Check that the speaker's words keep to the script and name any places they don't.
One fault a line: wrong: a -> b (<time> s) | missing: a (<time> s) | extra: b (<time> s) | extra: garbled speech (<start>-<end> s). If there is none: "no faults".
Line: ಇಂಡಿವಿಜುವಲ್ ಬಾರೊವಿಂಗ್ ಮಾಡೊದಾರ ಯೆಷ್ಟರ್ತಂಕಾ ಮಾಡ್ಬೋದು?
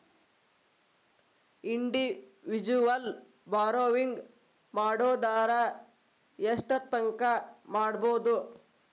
no faults